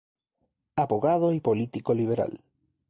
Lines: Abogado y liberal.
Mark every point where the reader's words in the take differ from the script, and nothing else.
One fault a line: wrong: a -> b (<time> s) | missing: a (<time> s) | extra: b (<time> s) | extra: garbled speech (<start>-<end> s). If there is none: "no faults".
extra: político (1.4 s)